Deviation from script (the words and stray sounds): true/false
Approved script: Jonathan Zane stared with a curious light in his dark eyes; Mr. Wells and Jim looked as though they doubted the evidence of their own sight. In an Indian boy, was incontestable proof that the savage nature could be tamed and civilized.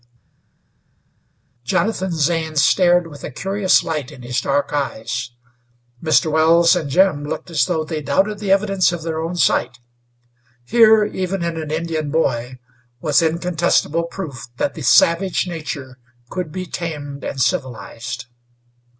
true